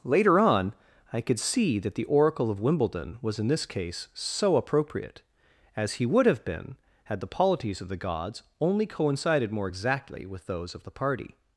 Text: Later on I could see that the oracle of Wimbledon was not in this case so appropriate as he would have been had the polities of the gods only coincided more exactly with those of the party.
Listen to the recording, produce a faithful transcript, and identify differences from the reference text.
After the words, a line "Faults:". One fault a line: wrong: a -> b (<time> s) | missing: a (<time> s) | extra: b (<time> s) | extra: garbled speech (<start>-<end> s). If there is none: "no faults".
Later on I could see that the oracle of Wimbledon was in this case so appropriate as he would have been had the polities of the gods only coincided more exactly with those of the party.
Faults:
missing: not (3.4 s)